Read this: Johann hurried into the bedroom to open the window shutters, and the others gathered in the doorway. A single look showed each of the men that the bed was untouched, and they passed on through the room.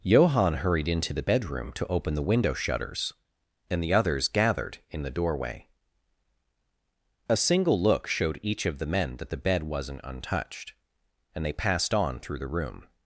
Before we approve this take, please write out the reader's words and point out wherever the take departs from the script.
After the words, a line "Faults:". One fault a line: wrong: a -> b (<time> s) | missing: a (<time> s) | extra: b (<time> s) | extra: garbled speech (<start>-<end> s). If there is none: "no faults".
Johann hurried into the bedroom to open the window shutters, and the others gathered in the doorway. A single look showed each of the men that the bed wasn't untouched, and they passed on through the room.
Faults:
wrong: was -> wasn't (9.6 s)